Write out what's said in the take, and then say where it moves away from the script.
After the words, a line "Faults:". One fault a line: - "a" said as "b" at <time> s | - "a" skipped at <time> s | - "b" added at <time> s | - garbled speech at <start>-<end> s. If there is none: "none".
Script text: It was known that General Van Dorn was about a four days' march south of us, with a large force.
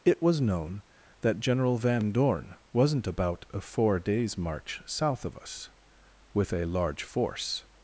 It was known that General Van Dorn wasn't about a four days' march south of us, with a large force.
Faults:
- "was" said as "wasn't" at 2.7 s